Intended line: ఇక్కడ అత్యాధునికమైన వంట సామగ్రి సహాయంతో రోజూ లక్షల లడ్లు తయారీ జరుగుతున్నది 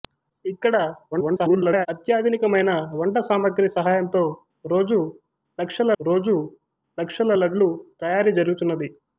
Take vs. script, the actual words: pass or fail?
fail